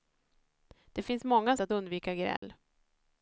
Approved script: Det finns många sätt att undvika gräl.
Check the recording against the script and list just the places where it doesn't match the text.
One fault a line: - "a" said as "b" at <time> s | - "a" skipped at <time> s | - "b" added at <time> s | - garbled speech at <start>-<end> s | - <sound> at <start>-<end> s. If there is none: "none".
- "sätt" skipped at 1.6 s
- dropout at 2.4-2.4 s